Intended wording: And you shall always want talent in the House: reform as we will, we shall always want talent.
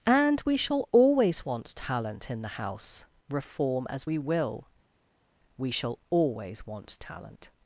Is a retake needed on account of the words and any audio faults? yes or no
yes